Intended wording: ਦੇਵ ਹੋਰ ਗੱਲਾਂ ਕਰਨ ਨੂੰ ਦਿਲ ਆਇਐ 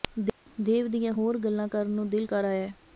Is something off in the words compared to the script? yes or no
yes